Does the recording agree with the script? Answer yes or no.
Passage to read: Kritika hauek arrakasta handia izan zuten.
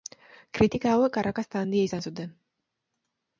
yes